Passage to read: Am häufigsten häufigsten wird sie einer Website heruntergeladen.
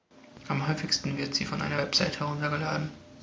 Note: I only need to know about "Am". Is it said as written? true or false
true